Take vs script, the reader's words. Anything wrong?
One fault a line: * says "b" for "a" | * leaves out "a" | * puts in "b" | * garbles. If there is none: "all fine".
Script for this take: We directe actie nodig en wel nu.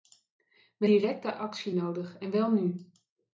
all fine